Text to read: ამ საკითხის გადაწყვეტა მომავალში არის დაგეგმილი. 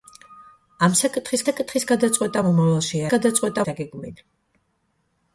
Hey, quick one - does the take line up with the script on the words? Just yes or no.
no